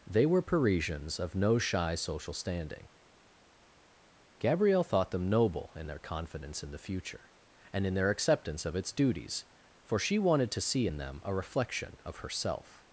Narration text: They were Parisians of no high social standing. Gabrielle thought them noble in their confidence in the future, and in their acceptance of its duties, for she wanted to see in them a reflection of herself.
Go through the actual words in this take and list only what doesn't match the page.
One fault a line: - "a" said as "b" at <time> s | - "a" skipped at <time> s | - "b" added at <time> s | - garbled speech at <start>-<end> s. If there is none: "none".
- "high" said as "shy" at 1.6 s